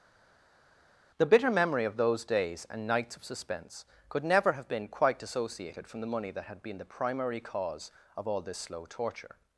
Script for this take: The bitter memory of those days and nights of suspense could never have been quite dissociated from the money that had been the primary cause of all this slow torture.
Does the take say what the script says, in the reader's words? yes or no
yes